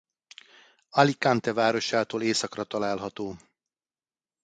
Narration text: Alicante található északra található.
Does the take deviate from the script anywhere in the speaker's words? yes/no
yes